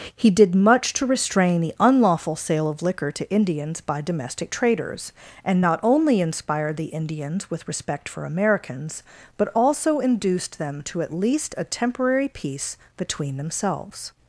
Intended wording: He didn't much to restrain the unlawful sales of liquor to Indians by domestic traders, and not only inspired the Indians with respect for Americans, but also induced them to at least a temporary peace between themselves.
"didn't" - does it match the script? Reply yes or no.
no